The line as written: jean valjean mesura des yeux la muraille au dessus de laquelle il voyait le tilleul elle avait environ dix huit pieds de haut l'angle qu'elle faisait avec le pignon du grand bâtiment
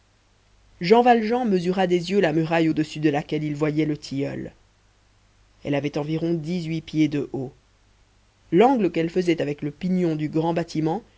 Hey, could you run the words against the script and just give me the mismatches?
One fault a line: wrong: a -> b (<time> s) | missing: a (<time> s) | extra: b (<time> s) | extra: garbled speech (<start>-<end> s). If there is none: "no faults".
no faults